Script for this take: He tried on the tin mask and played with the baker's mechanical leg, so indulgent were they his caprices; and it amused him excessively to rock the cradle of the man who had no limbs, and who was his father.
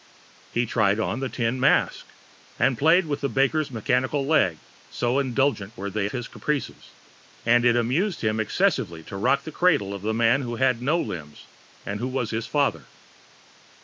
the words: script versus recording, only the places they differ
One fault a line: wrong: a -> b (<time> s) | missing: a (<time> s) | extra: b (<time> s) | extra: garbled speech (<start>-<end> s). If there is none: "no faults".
no faults